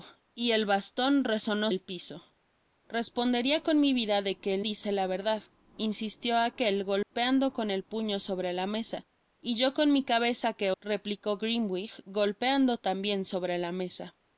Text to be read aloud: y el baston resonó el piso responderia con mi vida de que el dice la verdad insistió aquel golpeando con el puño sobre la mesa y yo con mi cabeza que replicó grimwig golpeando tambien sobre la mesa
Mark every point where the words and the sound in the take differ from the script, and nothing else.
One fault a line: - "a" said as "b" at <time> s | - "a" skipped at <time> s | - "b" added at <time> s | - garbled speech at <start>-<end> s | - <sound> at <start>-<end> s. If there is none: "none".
- dropout at 7.0-7.1 s